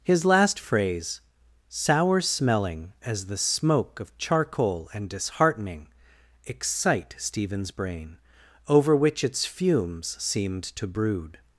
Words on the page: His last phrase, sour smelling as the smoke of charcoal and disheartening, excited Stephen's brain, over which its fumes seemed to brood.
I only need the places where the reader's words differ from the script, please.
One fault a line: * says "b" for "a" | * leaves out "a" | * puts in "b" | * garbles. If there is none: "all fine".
* says "excite" for "excited"